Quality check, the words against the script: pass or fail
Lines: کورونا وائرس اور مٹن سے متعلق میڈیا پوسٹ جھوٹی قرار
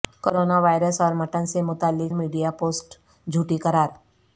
pass